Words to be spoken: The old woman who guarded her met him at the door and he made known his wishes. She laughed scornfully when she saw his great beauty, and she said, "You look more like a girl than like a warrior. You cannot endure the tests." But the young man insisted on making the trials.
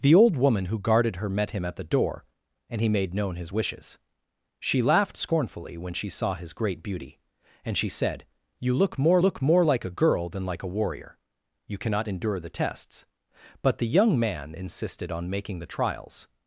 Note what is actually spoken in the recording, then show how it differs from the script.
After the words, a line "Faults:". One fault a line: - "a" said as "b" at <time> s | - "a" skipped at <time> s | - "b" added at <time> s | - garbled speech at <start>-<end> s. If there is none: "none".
The old woman who guarded her met him at the door and he made known his wishes. She laughed scornfully when she saw his great beauty, and she said, "You look more look more like a girl than like a warrior. You cannot endure the tests." But the young man insisted on making the trials.
Faults:
- "look more" added at 9.2 s